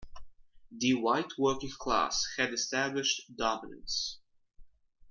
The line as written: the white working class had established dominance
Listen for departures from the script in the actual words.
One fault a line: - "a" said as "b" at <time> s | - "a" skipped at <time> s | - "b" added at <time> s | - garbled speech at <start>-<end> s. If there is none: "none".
none